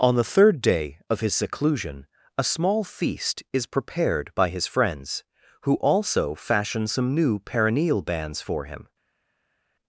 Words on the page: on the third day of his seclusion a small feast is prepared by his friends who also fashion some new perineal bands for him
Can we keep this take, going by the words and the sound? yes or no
yes